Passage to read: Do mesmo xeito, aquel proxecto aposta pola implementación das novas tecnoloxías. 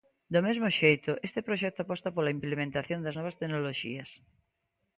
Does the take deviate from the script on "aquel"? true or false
true